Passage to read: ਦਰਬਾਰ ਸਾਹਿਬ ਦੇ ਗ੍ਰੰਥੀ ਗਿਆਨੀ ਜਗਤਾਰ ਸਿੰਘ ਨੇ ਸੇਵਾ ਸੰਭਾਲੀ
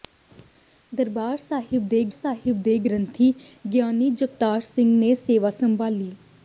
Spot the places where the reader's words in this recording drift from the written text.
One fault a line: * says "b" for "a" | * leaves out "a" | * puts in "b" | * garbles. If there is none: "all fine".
* puts in "ਸਾਹਿਬ ਦੇ"